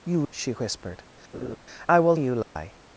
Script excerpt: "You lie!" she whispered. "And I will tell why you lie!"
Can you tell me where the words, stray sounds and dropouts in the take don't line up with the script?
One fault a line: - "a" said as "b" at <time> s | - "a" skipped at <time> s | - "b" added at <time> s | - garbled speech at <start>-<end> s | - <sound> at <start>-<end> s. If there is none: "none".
- "lie" skipped at 0.3 s
- "And" skipped at 1.0 s
- laugh at 1.3-1.6 s
- "tell why" skipped at 2.2 s
- dropout at 2.4-2.6 s